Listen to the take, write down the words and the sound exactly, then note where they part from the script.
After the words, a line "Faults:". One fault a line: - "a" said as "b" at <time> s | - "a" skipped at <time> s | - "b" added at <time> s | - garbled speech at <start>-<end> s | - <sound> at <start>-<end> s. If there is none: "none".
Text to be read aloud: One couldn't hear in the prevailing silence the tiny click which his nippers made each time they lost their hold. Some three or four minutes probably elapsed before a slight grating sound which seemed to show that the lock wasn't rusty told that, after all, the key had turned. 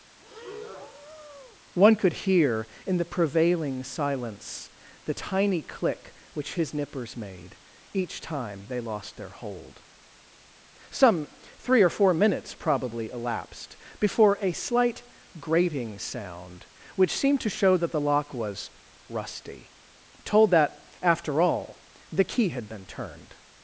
One could hear in the prevailing silence the tiny click which his nippers made each time they lost their hold. Some three or four minutes probably elapsed before a slight grating sound which seemed to show that the lock was rusty told that, after all, the key had been turned.
Faults:
- breath at 0.2-1.6 s
- "couldn't" said as "could" at 2.0 s
- "wasn't" said as "was" at 18.3 s
- "been" added at 22.7 s